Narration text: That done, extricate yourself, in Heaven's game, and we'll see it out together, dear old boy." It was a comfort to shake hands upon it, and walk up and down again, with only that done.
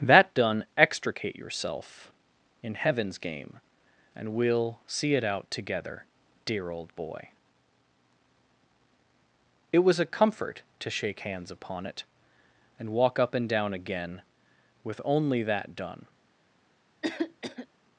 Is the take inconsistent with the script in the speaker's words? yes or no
no